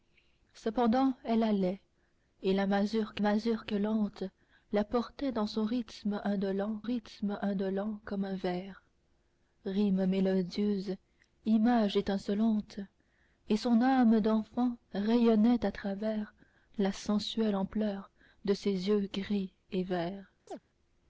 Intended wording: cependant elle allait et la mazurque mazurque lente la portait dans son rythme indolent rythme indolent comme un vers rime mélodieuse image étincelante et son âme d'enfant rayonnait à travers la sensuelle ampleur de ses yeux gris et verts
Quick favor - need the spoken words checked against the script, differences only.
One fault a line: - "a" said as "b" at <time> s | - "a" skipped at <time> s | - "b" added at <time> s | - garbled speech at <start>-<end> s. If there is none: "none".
none